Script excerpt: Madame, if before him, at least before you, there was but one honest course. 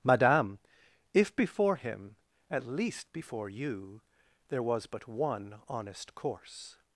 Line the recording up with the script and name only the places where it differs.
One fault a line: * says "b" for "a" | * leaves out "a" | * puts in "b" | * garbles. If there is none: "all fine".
all fine